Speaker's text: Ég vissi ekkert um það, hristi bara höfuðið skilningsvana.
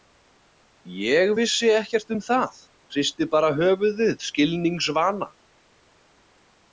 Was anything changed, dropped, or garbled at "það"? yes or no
no